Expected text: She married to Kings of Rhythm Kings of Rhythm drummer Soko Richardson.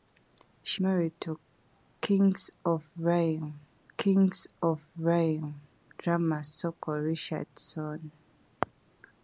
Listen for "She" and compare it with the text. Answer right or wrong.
right